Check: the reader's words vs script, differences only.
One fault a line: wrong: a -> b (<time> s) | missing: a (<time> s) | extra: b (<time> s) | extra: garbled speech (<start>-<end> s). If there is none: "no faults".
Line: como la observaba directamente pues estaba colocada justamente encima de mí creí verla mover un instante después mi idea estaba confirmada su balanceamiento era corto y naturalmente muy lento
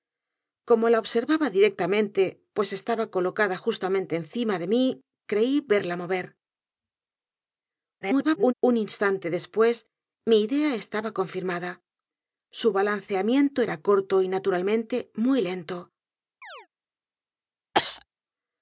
extra: garbled speech (8.0-8.5 s)